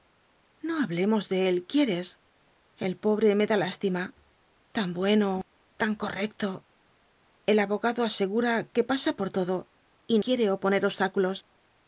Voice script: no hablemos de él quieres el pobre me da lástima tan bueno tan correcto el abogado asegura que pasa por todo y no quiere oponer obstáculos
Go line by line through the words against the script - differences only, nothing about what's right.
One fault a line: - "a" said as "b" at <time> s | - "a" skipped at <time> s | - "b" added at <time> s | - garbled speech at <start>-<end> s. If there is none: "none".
- "no" skipped at 10.2 s